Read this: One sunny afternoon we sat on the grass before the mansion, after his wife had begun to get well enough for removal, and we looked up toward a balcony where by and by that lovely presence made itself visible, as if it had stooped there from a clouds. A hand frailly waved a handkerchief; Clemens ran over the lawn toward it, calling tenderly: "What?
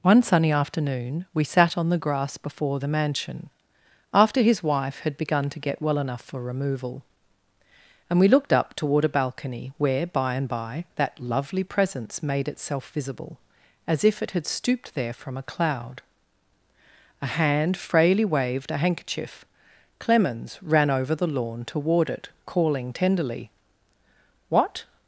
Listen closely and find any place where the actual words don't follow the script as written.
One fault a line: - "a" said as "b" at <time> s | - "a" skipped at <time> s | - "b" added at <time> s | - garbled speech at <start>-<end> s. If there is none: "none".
- "clouds" said as "cloud" at 15.4 s